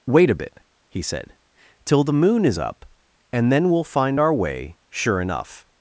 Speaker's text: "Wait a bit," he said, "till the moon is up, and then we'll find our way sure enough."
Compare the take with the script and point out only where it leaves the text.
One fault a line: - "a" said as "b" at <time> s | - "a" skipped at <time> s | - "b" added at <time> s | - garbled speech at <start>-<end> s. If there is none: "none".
none